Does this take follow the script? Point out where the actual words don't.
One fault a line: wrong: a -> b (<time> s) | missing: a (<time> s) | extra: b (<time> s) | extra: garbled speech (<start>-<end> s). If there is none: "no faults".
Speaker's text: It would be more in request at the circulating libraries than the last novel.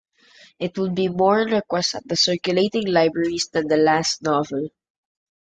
no faults